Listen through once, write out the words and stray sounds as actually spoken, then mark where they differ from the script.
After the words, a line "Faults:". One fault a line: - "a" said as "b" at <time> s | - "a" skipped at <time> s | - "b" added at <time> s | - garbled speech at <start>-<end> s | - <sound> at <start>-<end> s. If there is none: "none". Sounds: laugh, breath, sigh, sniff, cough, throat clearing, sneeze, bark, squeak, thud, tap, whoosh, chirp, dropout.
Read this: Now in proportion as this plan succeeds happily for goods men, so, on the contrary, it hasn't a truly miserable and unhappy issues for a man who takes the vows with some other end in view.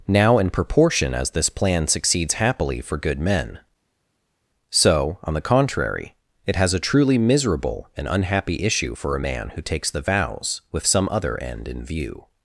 Now in proportion as this plan succeeds happily for good men, so, on the contrary, it has a truly miserable and unhappy issue for a man who takes the vows with some other end in view.
Faults:
- "goods" said as "good" at 3.0 s
- "hasn't" said as "has" at 6.5 s
- "issues" said as "issue" at 8.6 s